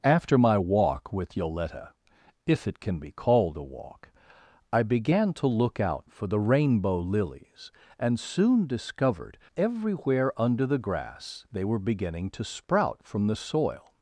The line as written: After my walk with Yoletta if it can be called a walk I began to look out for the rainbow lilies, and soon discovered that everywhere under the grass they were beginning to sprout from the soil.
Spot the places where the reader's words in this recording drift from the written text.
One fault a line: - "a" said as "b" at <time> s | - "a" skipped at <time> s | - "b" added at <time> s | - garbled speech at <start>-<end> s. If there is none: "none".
- "that" skipped at 9.4 s